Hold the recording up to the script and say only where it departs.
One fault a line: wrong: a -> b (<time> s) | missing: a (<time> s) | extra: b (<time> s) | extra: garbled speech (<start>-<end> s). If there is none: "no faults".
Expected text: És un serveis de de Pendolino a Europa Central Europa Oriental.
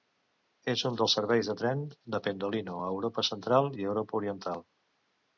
extra: dels (1.0 s)
extra: tren (1.6 s)
extra: i (3.8 s)